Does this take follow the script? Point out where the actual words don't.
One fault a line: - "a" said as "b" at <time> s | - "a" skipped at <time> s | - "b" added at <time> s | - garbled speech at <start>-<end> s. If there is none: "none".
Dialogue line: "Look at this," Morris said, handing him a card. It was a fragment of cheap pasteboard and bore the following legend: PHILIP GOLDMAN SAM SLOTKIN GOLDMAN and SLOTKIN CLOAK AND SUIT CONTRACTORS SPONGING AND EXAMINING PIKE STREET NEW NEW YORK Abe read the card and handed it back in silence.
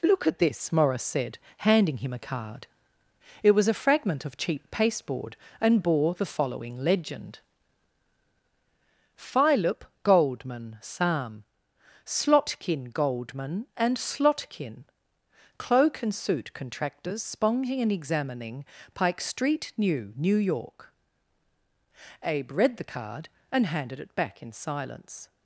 none